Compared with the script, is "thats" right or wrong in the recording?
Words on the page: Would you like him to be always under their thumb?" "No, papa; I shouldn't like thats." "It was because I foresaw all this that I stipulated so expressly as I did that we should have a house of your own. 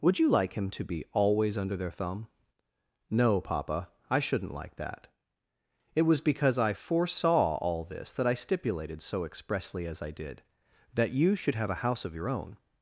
wrong